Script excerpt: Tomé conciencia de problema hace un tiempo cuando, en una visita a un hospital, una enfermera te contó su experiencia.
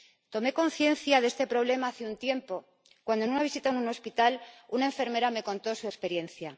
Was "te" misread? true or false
true